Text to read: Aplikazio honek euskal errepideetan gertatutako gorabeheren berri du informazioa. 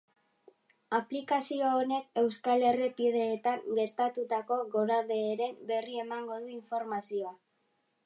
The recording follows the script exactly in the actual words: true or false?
false